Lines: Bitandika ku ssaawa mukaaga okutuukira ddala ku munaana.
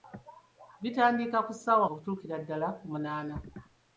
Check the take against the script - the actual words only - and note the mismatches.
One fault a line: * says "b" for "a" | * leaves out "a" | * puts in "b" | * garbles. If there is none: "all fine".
* leaves out "mukaaga"